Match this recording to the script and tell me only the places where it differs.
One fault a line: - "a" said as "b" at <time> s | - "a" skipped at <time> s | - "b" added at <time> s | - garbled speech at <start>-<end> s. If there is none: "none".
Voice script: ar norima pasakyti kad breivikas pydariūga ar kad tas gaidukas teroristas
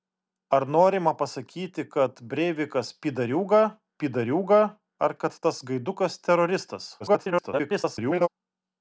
- "pydariūga" added at 4.0 s
- garbled speech at 7.0-8.3 s